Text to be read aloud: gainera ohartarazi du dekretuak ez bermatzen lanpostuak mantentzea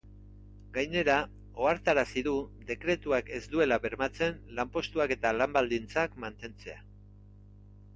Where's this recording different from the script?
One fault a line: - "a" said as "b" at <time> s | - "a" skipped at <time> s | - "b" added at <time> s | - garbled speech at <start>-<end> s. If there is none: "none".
- "duela" added at 3.6 s
- "eta lan baldintzak" added at 5.2 s